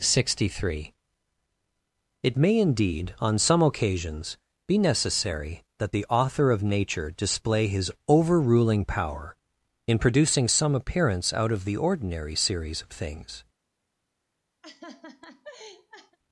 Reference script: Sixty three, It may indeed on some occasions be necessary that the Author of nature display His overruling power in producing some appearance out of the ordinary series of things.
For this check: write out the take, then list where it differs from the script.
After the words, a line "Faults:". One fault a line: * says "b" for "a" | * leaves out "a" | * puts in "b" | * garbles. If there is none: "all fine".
Sixty three, It may indeed on some occasions be necessary that the Author of nature display His overruling power in producing some appearance out of the ordinary series of things.
Faults:
all fine